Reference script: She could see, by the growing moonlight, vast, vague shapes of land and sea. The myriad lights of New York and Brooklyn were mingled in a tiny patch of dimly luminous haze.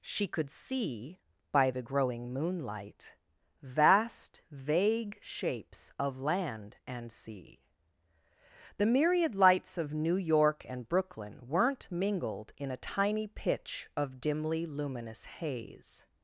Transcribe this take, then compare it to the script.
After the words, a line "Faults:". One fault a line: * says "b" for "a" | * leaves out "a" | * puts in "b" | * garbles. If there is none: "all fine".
She could see, by the growing moonlight, vast, vague shapes of land and sea. The myriad lights of New York and Brooklyn weren't mingled in a tiny pitch of dimly luminous haze.
Faults:
* says "weren't" for "were"
* says "pitch" for "patch"